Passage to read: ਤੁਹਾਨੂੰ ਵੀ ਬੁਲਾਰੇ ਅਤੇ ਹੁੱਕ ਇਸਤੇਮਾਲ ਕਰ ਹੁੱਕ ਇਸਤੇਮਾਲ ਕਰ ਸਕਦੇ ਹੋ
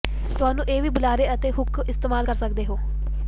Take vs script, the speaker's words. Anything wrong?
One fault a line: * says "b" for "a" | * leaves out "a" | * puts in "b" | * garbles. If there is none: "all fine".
* puts in "ਇਹ"
* leaves out "ਹੁੱਕ ਇਸਤੇਮਾਲ ਕਰ"